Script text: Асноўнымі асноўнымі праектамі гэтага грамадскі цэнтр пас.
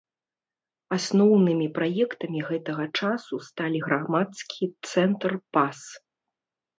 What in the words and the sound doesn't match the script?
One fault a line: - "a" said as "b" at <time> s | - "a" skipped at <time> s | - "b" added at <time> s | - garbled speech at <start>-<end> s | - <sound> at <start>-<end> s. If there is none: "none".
- "асноўнымі" skipped at 1.6 s
- "часу сталі" added at 3.0 s